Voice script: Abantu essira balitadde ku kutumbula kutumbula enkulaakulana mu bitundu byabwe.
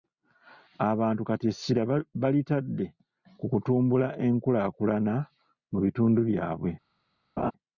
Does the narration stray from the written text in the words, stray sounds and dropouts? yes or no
yes